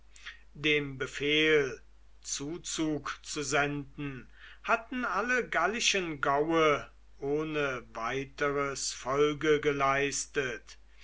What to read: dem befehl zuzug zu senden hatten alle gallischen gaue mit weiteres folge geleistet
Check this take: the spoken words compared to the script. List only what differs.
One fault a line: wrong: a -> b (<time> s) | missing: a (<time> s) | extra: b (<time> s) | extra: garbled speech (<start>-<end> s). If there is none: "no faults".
wrong: mit -> ohne (7.2 s)